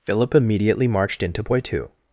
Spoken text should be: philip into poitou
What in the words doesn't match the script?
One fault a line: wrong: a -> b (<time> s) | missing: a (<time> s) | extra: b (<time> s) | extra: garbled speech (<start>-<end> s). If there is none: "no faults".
extra: immediately marched (0.3 s)